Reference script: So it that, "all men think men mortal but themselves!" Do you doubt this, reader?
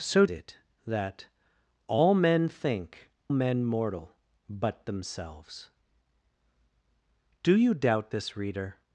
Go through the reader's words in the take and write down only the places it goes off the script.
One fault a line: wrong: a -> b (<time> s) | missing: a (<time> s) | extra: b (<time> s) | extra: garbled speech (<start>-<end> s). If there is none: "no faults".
no faults